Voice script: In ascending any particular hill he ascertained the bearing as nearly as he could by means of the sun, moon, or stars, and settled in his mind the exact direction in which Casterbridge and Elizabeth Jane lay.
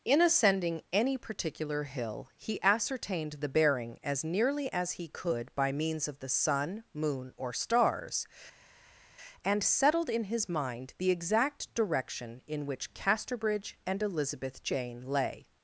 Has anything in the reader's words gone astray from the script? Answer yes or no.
no